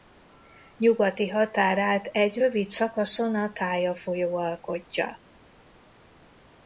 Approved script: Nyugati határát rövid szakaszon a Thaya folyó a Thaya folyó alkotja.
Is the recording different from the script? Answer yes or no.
yes